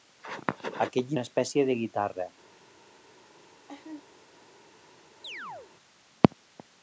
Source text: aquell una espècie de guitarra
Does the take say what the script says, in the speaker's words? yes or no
yes